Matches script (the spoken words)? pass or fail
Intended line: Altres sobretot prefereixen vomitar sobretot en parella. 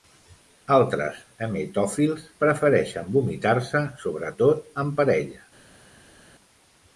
fail